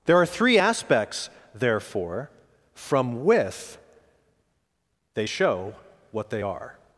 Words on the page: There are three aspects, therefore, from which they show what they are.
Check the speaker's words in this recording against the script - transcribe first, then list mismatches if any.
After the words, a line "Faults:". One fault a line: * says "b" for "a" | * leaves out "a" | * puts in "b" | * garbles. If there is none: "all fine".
There are three aspects, therefore, from with they show what they are.
Faults:
* says "with" for "which"